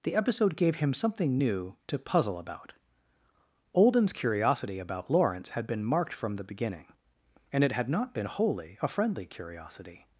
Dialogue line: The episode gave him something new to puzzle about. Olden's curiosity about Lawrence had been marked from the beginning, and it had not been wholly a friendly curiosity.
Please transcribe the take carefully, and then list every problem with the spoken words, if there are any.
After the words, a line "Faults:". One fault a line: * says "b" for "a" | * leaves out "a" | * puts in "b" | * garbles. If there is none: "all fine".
The episode gave him something new to puzzle about. Olden's curiosity about Lawrence had been marked from the beginning, and it had not been wholly a friendly curiosity.
Faults:
all fine